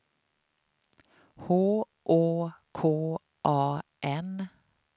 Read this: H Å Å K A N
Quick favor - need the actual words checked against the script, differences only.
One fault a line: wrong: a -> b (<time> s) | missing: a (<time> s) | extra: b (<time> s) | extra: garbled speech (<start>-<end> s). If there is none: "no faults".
missing: Å (2.5 s)